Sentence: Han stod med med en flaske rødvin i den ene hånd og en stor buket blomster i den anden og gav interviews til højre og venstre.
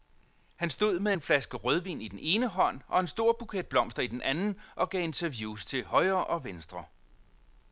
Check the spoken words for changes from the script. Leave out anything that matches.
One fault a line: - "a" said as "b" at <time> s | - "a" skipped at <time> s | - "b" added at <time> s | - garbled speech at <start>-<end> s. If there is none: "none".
- "med" skipped at 1.1 s